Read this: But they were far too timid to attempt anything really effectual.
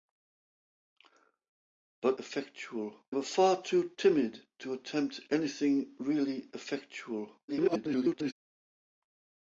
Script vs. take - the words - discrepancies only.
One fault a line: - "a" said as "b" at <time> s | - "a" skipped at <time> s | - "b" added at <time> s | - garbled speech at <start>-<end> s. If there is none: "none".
- "they" said as "effectual" at 2.2 s
- garbled speech at 7.5-8.3 s